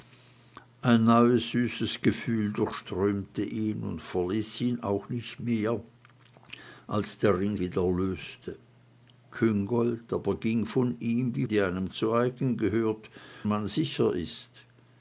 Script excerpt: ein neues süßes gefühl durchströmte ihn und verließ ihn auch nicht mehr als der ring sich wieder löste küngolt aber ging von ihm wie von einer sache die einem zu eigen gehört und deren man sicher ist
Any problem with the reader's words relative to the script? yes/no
yes